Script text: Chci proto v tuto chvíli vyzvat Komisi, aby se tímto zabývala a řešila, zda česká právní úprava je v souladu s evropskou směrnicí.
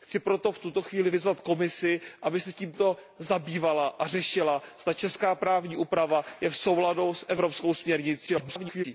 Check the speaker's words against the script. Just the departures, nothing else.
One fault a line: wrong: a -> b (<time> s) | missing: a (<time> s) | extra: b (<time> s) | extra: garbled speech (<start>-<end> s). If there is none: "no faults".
extra: garbled speech (8.3-8.8 s)